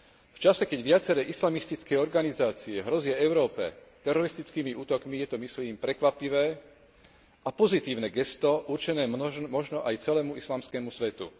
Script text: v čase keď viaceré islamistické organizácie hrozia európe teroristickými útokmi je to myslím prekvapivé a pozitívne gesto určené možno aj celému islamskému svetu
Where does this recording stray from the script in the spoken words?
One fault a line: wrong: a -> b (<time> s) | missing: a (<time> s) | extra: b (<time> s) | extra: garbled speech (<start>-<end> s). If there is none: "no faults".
no faults